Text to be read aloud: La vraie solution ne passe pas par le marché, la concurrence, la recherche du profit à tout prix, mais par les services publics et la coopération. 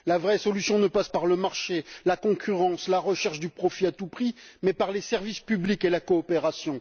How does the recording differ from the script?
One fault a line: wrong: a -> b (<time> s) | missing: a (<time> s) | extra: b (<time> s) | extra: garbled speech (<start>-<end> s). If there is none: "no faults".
missing: pas (1.1 s)